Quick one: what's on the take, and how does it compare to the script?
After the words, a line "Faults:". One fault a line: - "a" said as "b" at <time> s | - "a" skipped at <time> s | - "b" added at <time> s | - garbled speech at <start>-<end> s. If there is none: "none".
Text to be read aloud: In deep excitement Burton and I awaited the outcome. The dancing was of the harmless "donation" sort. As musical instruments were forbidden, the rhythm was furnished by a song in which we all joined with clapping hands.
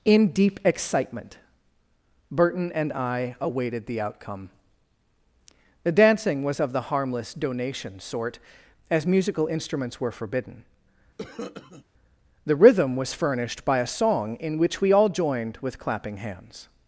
In deep excitement Burton and I awaited the outcome. The dancing was of the harmless "donation" sort. As musical instruments were forbidden, the rhythm was furnished by a song in which we all joined with clapping hands.
Faults:
none